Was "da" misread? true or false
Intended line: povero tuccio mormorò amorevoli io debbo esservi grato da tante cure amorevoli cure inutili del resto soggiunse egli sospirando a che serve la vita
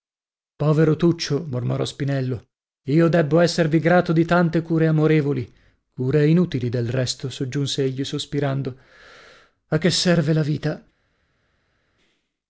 true